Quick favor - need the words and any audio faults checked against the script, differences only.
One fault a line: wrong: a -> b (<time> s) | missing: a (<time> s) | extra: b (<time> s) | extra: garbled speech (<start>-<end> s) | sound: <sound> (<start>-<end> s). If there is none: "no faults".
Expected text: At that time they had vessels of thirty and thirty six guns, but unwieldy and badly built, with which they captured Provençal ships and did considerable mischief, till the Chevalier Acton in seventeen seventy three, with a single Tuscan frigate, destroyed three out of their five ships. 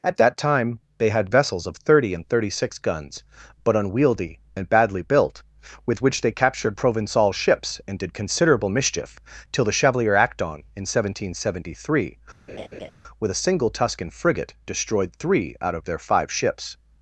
sound: laugh (12.5-12.9 s)